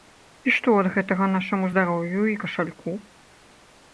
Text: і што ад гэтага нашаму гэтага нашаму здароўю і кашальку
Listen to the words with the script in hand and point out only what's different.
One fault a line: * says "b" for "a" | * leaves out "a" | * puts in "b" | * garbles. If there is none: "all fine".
* leaves out "гэтага нашаму"